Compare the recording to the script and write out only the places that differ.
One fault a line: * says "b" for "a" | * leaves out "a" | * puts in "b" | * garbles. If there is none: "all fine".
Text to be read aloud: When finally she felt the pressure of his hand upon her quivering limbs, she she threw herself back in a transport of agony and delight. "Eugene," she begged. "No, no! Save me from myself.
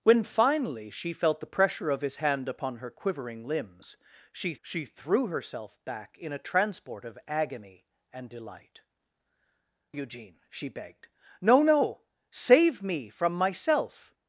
all fine